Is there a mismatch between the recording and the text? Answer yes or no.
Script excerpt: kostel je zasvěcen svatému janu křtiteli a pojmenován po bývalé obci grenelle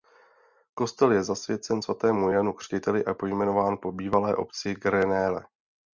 no